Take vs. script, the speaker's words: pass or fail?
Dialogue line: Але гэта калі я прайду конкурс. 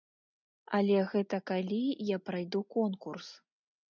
pass